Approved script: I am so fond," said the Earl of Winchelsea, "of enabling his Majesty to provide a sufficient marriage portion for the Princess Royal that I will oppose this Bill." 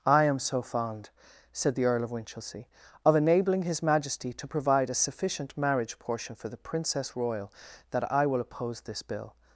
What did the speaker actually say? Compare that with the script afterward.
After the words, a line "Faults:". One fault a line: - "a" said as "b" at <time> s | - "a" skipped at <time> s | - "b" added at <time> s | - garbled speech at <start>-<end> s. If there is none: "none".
I am so fond," said the Earl of Winchelsea, "of enabling his Majesty to provide a sufficient marriage portion for the Princess Royal that I will oppose this Bill."
Faults:
none